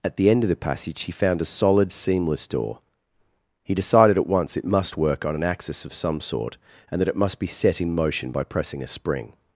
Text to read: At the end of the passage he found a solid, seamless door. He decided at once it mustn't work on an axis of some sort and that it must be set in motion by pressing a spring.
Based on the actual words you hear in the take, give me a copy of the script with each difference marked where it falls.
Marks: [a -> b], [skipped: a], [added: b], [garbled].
At the end of the passage he found a solid, seamless door. He decided at once it [mustn't -> must] work on an axis of some sort and that it must be set in motion by pressing a spring.